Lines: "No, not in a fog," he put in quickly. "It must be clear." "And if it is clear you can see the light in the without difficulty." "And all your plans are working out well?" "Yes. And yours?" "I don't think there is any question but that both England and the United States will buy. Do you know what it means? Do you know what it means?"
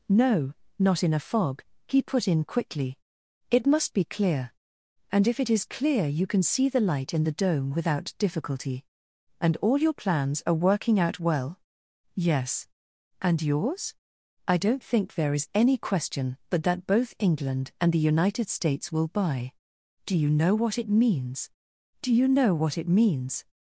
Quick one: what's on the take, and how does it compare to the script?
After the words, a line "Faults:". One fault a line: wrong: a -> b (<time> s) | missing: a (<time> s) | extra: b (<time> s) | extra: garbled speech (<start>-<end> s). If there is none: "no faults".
"No, not in a fog," he put in quickly. "It must be clear." "And if it is clear you can see the light in the dome without difficulty." "And all your plans are working out well?" "Yes. And yours?" "I don't think there is any question but that both England and the United States will buy. Do you know what it means? Do you know what it means?"
Faults:
extra: dome (7.3 s)